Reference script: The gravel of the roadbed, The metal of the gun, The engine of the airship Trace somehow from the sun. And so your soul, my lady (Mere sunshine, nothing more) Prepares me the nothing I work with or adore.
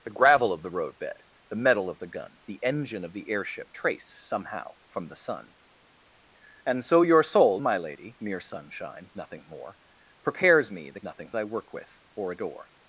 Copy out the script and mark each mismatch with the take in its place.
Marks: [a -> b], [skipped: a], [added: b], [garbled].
The gravel of the roadbed, The metal of the gun, The engine of the airship Trace somehow from the sun. And so your soul, my lady (Mere sunshine, nothing more) Prepares me the nothing I work with or adore.